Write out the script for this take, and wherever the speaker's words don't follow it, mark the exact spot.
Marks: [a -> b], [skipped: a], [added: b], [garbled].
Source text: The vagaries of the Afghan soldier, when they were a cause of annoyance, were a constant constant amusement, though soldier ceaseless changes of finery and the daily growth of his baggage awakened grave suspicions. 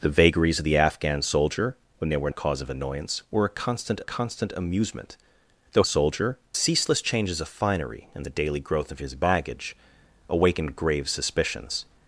The vagaries of the Afghan soldier, when they were a cause of annoyance, were a constant constant amusement, though soldier ceaseless changes of finery and the daily growth of his baggage awakened grave suspicions.